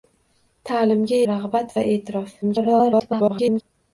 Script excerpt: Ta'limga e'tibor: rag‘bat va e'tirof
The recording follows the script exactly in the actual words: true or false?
false